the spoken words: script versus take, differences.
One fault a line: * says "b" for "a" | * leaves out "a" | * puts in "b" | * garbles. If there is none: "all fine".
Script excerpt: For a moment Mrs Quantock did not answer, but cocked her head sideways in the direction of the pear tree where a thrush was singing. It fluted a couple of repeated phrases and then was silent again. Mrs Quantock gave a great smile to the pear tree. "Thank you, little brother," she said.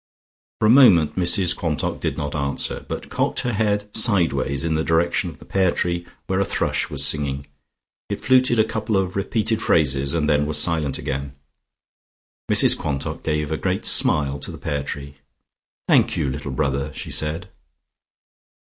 all fine